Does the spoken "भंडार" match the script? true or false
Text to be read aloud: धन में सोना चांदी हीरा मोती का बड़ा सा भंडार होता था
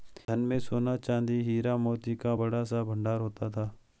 true